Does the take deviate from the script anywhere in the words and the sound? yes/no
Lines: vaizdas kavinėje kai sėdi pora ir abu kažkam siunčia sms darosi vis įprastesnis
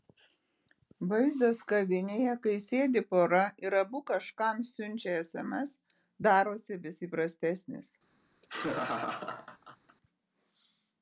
yes